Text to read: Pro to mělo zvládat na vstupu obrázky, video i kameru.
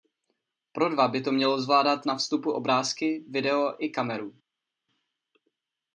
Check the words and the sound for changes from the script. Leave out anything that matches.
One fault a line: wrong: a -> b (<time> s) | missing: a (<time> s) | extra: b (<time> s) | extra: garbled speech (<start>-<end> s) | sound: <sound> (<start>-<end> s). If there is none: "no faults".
extra: dva by (0.9 s)